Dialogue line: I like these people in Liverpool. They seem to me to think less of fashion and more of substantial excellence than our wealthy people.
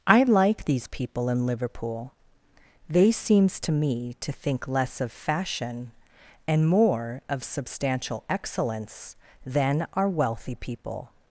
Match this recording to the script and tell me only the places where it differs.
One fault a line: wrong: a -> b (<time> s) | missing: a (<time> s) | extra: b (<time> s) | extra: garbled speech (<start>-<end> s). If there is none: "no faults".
wrong: seem -> seems (3.1 s)